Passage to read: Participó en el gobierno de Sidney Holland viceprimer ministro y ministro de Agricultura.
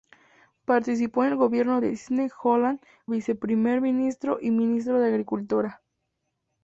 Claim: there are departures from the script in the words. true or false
false